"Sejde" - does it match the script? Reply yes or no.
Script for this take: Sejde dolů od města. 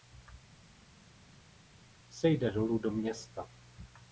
yes